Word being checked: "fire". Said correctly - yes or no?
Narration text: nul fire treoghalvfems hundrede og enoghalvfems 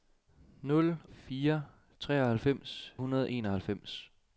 yes